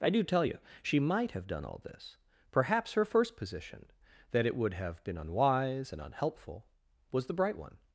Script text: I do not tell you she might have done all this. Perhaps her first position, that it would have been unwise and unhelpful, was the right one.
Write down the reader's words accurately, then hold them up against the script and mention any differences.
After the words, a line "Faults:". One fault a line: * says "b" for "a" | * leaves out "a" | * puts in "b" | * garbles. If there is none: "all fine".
I do tell you she might have done all this. Perhaps her first position, that it would have been unwise and unhelpful, was the bright one.
Faults:
* leaves out "not"
* says "bright" for "right"